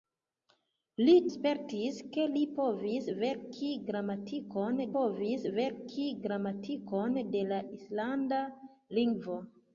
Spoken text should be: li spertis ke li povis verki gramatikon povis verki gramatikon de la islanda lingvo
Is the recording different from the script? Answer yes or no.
no